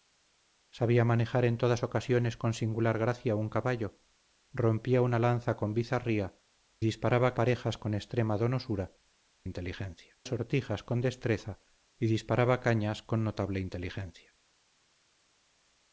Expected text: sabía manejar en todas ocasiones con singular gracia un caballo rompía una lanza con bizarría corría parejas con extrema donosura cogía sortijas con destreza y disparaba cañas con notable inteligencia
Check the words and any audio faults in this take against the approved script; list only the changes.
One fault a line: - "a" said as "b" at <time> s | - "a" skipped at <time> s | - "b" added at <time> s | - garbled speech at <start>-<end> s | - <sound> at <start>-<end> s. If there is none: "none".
- "corría" said as "disparaba" at 6.8 s
- "cogía" said as "inteligencia" at 9.4 s